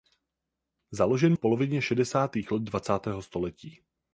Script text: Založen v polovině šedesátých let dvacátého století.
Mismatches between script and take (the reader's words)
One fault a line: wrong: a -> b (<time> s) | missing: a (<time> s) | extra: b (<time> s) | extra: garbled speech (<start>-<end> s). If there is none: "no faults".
no faults